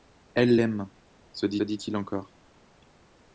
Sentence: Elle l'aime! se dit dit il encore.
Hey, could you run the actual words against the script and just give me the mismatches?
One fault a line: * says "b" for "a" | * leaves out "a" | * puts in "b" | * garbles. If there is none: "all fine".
all fine